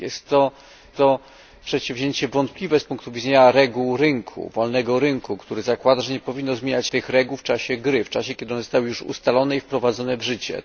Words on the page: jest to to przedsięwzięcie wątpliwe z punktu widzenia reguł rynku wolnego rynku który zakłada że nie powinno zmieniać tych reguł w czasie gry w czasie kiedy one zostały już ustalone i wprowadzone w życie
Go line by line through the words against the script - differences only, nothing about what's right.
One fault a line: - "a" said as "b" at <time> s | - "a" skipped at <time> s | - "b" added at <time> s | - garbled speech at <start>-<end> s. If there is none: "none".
none